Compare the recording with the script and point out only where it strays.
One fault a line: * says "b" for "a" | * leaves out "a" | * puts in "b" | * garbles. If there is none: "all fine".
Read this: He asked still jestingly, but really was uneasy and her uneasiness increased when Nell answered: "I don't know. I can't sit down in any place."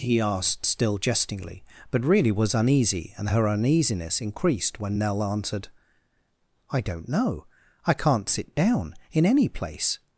all fine